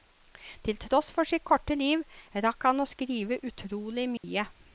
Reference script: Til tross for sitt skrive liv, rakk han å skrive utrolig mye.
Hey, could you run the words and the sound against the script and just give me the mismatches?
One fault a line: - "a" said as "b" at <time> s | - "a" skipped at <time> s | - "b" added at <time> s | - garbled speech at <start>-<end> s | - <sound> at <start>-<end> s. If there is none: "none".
- "skrive" said as "korte" at 1.4 s
- dropout at 4.2-4.2 s